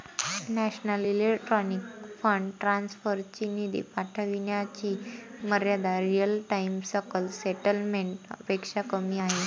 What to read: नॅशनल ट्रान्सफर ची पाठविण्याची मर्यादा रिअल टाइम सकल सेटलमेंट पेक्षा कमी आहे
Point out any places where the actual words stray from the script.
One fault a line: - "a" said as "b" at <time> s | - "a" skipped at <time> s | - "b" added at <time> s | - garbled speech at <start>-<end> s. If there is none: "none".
- "इलेक्ट्रॉनिक फंड" added at 1.0 s
- "निधी" added at 3.5 s